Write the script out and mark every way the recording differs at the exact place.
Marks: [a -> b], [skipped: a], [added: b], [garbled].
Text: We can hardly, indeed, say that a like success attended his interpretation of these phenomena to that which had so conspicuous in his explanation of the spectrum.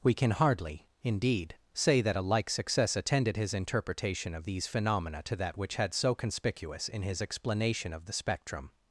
We can hardly, indeed, say that a like success attended his interpretation of these phenomena to that which had so conspicuous in his explanation of the spectrum.